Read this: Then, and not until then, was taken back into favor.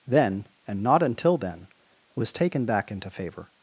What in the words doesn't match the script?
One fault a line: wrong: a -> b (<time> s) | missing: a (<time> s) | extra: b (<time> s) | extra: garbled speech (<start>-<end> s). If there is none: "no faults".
no faults